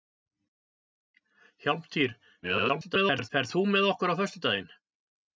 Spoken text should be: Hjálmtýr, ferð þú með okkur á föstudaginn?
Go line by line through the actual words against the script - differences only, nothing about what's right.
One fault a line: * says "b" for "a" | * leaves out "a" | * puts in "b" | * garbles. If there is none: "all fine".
* garbles